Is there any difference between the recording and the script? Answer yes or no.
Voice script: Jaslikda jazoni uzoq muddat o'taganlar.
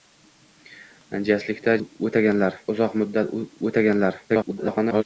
yes